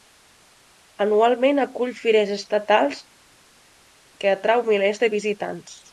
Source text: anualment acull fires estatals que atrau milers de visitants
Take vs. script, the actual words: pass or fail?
pass